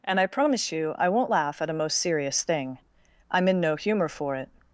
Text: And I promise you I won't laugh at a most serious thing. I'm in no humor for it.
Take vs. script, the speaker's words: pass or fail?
pass